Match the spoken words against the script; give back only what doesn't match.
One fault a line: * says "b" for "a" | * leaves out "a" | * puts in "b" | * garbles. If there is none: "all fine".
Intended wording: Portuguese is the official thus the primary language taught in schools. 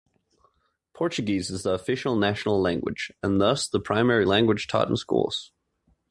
* puts in "national language and"